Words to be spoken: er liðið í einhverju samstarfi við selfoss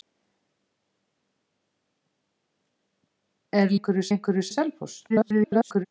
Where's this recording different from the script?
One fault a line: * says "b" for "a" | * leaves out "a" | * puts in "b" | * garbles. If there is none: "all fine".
* says "einhverju" for "liðið"
* leaves out "samstarfi"
* garbles